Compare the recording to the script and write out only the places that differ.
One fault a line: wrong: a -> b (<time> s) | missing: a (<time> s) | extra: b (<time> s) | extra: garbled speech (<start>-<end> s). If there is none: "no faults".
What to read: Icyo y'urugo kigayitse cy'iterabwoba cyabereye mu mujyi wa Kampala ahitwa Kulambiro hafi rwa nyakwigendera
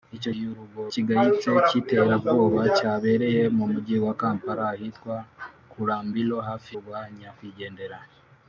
no faults